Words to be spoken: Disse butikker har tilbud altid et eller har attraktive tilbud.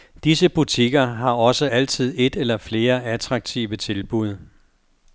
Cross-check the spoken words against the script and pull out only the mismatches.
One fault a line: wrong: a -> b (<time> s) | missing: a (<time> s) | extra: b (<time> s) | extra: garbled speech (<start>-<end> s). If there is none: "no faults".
wrong: tilbud -> også (1.3 s)
wrong: har -> flere (2.6 s)